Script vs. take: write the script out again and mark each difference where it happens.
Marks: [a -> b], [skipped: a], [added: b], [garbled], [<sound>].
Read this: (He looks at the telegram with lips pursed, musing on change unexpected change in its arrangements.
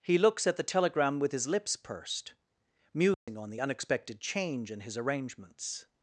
(He looks at the telegram with [added: his] lips pursed, musing [dropout] on [change -> the] unexpected change in [its -> his] arrangements.